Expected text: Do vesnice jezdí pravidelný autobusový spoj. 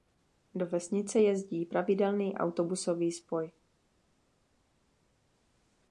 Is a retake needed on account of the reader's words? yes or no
no